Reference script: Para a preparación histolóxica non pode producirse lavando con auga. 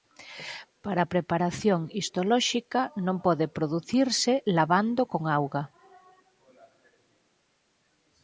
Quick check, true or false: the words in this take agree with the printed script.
true